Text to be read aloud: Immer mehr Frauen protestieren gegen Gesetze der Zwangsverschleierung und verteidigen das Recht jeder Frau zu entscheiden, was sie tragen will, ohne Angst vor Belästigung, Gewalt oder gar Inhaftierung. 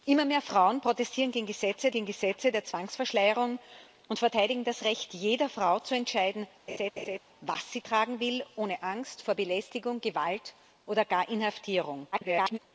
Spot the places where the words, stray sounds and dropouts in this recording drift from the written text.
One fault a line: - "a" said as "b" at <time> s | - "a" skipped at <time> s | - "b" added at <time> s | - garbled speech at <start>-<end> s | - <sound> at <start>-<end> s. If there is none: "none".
- "gegen Gesetze" added at 1.9 s
- laugh at 6.7-7.2 s
- garbled speech at 12.1-12.6 s